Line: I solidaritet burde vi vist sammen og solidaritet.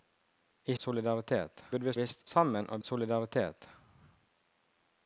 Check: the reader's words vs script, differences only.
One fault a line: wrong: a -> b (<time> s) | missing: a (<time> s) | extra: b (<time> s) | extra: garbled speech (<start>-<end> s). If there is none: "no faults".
no faults